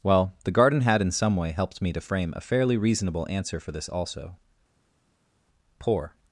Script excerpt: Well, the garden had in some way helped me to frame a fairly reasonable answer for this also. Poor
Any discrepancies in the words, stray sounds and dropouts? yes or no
no